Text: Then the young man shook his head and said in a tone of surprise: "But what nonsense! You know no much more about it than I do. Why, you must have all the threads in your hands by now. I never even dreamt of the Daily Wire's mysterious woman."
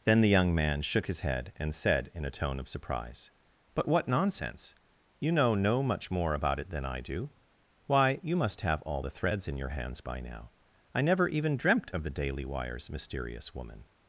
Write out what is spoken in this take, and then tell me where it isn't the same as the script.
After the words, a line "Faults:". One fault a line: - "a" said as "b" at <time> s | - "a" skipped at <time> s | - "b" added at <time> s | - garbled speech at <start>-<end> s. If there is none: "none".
Then the young man shook his head and said in a tone of surprise: "But what nonsense! You know no much more about it than I do. Why, you must have all the threads in your hands by now. I never even dreamt of the Daily Wire's mysterious woman."
Faults:
none